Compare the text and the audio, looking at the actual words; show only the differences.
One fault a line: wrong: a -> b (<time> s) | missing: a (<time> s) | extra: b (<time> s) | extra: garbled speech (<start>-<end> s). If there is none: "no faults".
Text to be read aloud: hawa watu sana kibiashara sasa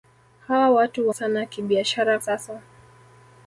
no faults